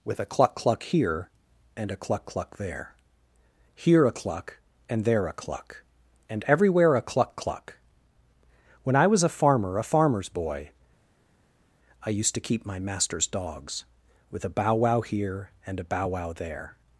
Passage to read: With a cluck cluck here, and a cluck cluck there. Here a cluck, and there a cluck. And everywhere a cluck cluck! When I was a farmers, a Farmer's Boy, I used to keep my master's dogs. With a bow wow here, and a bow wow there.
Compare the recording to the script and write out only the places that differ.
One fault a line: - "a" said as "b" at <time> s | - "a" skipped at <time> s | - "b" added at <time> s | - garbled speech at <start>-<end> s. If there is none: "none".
- "farmers" said as "farmer" at 9.3 s